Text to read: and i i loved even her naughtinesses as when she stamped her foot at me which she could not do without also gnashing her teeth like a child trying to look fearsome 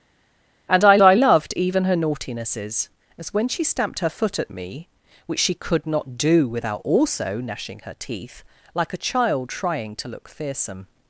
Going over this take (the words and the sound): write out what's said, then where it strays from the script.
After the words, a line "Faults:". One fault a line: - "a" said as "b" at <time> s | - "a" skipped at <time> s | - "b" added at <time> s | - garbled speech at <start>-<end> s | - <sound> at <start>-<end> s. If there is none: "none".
and i i loved even her naughtinesses as when she stamped her foot at me which she could not do without also gnashing her teeth like a child trying to look fearsome
Faults:
none